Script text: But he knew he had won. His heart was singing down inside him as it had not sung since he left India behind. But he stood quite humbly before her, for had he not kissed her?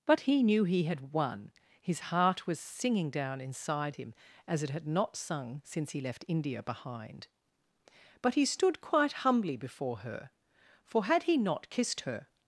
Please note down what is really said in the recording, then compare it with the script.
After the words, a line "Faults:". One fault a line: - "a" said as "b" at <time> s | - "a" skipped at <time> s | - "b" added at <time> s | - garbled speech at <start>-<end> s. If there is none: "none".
But he knew he had won. His heart was singing down inside him as it had not sung since he left India behind. But he stood quite humbly before her, for had he not kissed her?
Faults:
none